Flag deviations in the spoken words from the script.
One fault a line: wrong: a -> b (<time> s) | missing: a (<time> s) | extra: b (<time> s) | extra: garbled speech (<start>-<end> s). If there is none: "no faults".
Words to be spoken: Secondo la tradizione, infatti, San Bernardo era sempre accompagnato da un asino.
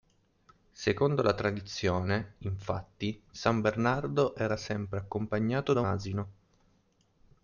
missing: un (5.8 s)